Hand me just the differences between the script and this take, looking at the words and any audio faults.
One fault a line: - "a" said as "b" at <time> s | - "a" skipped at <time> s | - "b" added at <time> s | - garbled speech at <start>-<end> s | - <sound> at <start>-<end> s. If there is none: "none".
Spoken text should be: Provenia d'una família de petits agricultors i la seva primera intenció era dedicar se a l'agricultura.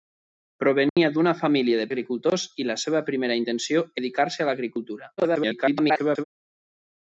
- dropout at 0.9-1.0 s
- "petits" skipped at 1.9 s
- "era" skipped at 3.8 s
- garbled speech at 5.2-6.2 s